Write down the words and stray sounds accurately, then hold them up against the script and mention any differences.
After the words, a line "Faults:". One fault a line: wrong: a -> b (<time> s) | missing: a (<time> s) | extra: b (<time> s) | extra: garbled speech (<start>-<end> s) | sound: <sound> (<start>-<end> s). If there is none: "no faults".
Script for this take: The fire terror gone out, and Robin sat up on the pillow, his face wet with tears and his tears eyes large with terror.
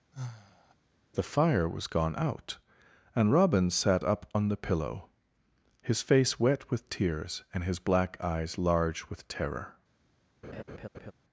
The fire was gone out, and Robin sat up on the pillow, his face wet with tears and his black eyes large with terror.
Faults:
sound: sigh (0.1-0.7 s)
wrong: terror -> was (1.7 s)
wrong: tears -> black (7.8 s)
sound: laugh (10.4-11.1 s)